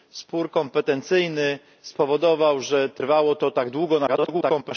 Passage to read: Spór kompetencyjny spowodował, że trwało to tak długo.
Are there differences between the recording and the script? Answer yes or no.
yes